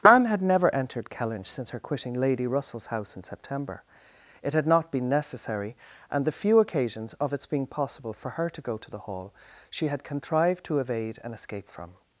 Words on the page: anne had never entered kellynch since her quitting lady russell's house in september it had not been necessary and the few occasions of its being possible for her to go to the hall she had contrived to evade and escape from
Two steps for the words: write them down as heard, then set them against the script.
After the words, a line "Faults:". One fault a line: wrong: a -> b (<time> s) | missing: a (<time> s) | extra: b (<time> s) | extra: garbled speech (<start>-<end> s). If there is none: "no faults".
anne had never entered kellynch since her quitting lady russell's house in september it had not been necessary and the few occasions of its being possible for her to go to the hall she had contrived to evade and escape from
Faults:
no faults